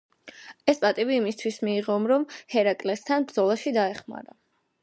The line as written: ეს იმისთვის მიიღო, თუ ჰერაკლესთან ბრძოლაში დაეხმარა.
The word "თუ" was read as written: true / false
false